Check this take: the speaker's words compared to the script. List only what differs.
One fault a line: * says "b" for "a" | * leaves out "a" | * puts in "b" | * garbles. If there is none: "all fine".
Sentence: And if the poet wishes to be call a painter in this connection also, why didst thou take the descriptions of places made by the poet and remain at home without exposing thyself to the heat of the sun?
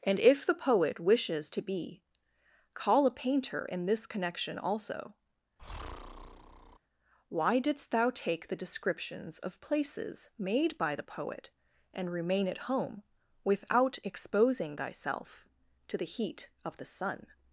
all fine